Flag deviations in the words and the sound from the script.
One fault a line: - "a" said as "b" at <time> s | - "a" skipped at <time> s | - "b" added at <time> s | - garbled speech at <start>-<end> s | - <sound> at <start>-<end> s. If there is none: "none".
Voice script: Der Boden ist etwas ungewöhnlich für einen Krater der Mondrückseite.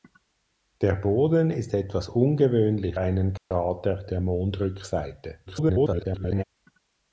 - "für" skipped at 3.0 s
- dropout at 3.4-3.5 s
- garbled speech at 5.5-6.4 s